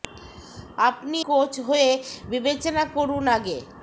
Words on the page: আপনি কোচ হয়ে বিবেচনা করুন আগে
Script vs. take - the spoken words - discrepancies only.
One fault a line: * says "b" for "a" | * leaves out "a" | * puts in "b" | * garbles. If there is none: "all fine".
all fine